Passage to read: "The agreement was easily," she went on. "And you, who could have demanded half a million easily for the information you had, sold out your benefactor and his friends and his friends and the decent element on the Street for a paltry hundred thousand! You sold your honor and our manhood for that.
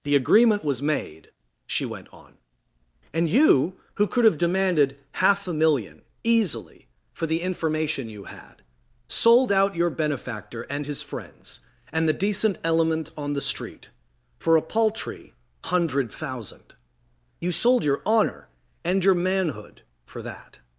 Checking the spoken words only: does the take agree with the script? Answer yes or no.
no